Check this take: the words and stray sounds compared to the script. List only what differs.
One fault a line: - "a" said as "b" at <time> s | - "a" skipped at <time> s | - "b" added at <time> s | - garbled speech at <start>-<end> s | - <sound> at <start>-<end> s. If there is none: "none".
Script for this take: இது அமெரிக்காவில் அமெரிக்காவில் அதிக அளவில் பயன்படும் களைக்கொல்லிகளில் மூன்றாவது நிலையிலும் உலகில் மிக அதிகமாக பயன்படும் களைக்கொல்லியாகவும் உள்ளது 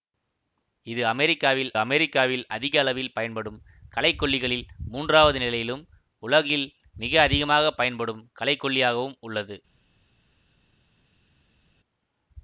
none